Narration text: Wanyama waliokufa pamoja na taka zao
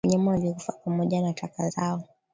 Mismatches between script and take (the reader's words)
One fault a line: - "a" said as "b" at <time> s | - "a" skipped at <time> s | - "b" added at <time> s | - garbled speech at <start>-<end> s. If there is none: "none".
none